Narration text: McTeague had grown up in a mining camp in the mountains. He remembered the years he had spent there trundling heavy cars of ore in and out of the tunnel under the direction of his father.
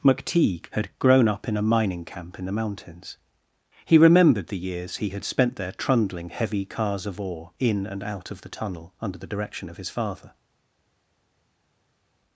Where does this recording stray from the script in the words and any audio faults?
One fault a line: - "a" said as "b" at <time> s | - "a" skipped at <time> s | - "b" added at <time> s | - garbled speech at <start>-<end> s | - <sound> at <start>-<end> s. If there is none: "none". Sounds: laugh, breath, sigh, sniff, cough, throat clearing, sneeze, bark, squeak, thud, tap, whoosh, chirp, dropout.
none